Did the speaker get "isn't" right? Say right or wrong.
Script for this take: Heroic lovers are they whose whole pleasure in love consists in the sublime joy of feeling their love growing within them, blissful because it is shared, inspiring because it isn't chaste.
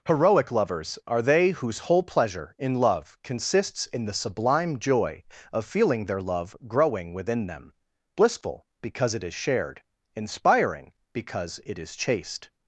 wrong